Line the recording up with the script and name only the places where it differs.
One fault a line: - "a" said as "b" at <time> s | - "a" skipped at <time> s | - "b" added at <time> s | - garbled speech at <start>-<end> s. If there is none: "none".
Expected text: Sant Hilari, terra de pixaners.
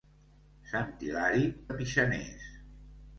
- "terra" skipped at 1.4 s